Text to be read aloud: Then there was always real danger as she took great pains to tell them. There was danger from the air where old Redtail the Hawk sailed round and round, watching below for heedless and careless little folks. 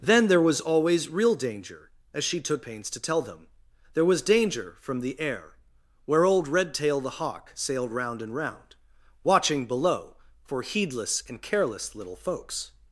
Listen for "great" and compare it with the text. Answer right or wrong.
wrong